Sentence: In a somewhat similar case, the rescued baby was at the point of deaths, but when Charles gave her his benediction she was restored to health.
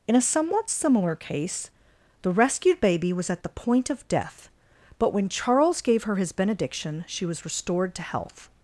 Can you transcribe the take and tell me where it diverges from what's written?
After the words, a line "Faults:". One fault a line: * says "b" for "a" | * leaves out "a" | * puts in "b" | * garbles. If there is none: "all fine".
In a somewhat similar case, the rescued baby was at the point of death, but when Charles gave her his benediction she was restored to health.
Faults:
* says "death" for "deaths"